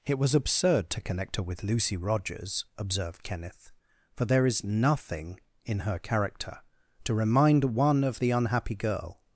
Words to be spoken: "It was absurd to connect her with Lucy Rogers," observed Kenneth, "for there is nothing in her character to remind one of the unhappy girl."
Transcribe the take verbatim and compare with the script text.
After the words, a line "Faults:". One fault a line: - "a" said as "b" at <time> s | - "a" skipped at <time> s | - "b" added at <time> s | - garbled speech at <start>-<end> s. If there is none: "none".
"It was absurd to connect her with Lucy Rogers," observed Kenneth, "for there is nothing in her character to remind one of the unhappy girl."
Faults:
none